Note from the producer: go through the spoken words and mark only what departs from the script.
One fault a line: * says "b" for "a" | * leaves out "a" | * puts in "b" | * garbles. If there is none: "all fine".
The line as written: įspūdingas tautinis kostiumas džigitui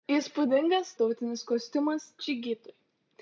all fine